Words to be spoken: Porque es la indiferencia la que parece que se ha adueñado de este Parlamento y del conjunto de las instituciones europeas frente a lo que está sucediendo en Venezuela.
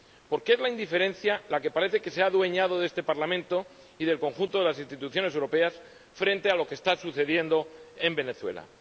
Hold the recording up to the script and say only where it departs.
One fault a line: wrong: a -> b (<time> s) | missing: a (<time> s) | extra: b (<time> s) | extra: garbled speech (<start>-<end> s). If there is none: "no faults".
no faults